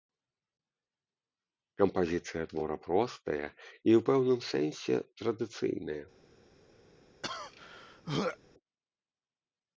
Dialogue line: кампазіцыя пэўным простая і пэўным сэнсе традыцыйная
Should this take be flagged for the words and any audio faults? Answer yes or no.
yes